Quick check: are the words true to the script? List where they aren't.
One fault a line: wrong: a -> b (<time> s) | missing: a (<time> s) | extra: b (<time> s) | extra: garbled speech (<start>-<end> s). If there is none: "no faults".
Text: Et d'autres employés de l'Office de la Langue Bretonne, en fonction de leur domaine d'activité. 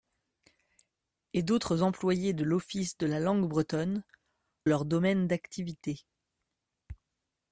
missing: en fonction de (4.0 s)